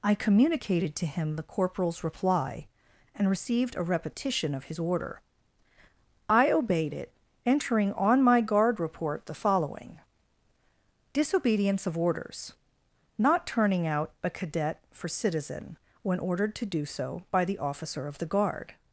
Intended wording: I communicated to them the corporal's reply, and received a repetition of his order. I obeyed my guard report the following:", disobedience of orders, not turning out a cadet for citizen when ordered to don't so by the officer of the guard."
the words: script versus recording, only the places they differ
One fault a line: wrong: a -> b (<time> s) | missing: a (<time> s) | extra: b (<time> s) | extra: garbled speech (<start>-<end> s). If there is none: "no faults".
wrong: them -> him (1.1 s)
extra: it entering on (6.9 s)
wrong: don't -> do (16.6 s)